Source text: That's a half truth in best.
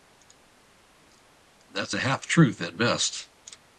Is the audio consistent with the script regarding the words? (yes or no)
no